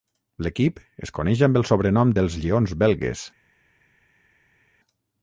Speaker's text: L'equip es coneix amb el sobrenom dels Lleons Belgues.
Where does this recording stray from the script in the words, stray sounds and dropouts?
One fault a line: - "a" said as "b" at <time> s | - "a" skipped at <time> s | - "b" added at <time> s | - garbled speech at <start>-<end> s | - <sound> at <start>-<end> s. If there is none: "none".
none